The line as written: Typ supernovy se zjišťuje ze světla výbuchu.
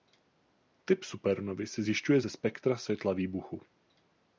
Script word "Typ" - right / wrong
right